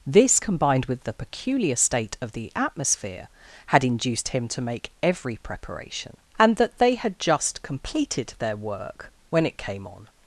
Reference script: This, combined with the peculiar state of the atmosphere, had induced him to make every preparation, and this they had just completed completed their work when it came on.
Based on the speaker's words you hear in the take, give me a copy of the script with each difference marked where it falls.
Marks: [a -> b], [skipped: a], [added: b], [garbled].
This, combined with the peculiar state of the atmosphere, had induced him to make every preparation, and [this -> that] they had just completed [skipped: completed] their work when it came on.